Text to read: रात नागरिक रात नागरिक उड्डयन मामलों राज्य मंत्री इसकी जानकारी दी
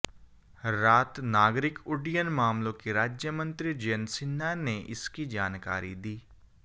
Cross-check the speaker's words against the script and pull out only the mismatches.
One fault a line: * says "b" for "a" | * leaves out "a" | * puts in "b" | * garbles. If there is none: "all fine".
* leaves out "रात नागरिक"
* puts in "के"
* puts in "जयंत सिन्हा ने"